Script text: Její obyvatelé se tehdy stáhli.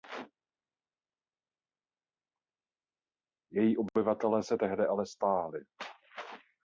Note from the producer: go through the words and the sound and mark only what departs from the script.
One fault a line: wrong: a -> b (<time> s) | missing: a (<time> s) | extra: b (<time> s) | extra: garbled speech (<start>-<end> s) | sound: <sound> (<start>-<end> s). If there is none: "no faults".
extra: ale (4.9 s)